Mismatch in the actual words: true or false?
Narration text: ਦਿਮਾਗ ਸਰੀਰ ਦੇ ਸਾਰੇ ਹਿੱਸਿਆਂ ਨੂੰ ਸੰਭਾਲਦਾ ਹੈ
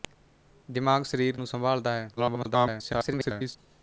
true